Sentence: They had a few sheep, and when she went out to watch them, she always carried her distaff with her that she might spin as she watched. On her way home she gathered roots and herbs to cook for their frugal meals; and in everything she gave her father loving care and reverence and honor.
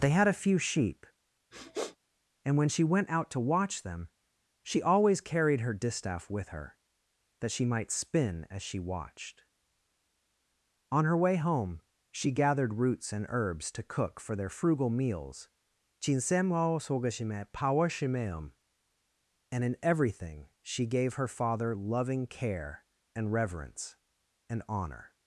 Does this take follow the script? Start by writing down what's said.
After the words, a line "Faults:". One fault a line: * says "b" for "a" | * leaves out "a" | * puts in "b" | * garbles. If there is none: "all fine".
They had a few sheep, and when she went out to watch them, she always carried her distaff with her that she might spin as she watched. On her way home she gathered roots and herbs to cook for their frugal meals; and in everything she gave her father loving care and reverence and honor.
Faults:
all fine